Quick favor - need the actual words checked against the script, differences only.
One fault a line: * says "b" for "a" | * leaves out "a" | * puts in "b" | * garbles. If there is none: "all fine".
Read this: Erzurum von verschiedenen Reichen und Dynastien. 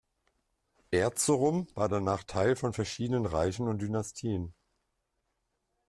* puts in "war danach Teil"